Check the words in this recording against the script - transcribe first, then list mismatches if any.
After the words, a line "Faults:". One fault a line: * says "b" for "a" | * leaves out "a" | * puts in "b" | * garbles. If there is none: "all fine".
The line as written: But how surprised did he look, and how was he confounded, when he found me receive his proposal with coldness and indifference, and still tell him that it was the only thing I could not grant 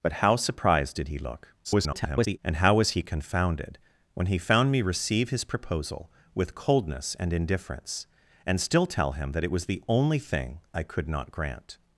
But how surprised did he look, [garbled] and how was he confounded, when he found me receive his proposal with coldness and indifference, and still tell him that it was the only thing I could not grant
Faults:
* garbles